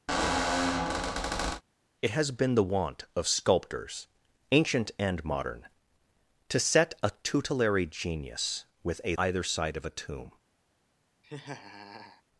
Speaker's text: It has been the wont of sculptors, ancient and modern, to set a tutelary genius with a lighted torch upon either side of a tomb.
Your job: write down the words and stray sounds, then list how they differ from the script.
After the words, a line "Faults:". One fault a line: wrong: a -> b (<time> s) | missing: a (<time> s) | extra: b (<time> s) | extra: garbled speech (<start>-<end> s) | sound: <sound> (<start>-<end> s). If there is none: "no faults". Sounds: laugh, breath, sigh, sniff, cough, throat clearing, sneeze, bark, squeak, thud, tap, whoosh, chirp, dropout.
It has been the wont of sculptors, ancient and modern, to set a tutelary genius with a either side of a tomb.
Faults:
sound: squeak (0.1-1.6 s)
missing: lighted torch upon (9.2 s)
sound: laugh (11.2-12.2 s)